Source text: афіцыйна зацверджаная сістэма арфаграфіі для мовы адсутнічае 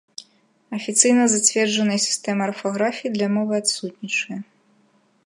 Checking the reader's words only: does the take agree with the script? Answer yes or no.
yes